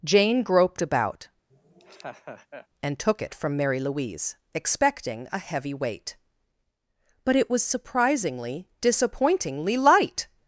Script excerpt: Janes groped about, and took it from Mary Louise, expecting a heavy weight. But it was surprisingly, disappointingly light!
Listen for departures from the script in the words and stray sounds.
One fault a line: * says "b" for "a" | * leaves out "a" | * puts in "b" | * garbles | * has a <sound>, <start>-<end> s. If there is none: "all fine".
* says "Jane" for "Janes"
* has a laugh, 1.5-2.7 s